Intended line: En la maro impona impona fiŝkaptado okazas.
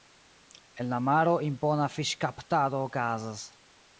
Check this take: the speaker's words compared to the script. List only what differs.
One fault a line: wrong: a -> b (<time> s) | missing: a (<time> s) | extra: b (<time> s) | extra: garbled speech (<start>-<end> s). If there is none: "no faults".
missing: impona (1.9 s)